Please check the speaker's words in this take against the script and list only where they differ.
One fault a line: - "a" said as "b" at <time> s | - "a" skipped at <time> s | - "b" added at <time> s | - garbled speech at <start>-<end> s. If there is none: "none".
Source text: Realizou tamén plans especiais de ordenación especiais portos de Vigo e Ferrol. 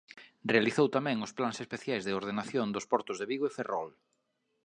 - "os" added at 1.2 s
- "especiais" said as "dos" at 2.8 s